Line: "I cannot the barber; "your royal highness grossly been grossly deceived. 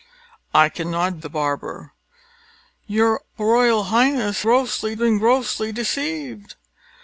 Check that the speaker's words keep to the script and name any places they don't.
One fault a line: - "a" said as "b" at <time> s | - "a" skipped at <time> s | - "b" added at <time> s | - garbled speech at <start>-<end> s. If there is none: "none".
none